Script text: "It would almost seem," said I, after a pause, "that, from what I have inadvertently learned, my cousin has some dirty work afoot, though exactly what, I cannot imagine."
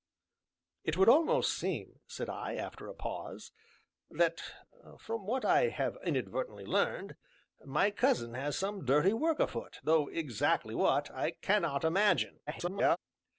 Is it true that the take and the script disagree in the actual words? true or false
true